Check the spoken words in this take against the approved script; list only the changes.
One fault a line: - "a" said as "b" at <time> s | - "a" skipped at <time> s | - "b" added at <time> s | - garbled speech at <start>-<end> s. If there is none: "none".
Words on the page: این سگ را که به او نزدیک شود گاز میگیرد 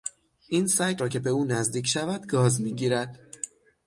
none